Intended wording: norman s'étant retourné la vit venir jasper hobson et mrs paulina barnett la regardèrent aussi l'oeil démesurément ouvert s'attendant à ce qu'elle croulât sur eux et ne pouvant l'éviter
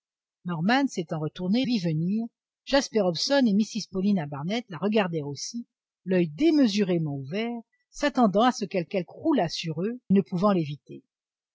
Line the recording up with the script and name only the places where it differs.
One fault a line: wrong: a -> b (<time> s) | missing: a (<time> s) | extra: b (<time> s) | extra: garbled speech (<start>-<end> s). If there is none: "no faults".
missing: la (1.6 s)
extra: qu'elle (8.8 s)
missing: et (10.0 s)